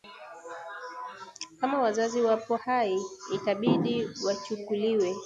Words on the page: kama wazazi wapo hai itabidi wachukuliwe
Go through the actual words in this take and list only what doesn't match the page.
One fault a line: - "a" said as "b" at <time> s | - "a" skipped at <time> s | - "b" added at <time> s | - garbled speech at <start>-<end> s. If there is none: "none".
none